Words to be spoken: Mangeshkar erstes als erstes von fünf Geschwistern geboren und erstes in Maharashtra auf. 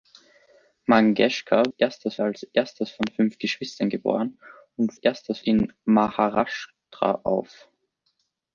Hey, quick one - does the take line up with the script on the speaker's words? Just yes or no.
yes